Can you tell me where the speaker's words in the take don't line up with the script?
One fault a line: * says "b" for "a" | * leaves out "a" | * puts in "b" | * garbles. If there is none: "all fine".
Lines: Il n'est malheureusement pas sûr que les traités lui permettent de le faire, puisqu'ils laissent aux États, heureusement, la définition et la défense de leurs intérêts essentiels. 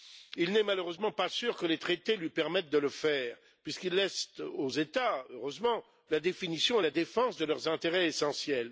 all fine